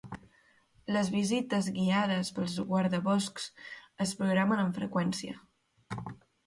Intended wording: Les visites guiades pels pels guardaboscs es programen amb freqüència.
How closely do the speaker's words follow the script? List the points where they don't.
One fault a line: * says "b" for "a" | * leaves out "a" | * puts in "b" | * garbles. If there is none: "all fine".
* leaves out "pels"